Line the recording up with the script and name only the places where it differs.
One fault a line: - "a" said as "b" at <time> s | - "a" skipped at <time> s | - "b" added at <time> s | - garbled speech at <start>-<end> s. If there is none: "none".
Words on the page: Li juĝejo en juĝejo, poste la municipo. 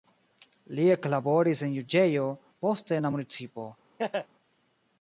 - "juĝejo" said as "eklaboris" at 0.9 s
- "en" added at 3.0 s